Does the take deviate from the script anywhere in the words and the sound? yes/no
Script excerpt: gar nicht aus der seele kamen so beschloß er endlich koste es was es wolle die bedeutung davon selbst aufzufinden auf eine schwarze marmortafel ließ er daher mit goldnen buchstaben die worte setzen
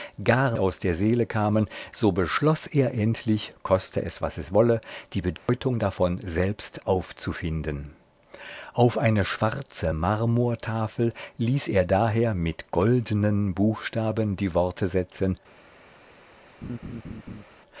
yes